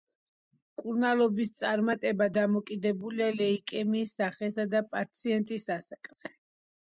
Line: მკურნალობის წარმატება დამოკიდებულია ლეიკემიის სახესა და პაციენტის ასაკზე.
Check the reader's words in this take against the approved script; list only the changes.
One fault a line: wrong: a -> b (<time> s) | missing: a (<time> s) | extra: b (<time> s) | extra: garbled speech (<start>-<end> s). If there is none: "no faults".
no faults